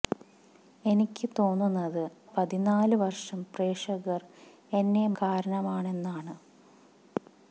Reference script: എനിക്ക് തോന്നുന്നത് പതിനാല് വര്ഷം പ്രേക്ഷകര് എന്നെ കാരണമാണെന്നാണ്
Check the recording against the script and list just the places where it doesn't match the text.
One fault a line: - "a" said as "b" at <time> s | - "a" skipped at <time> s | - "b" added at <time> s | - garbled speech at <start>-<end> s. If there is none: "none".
none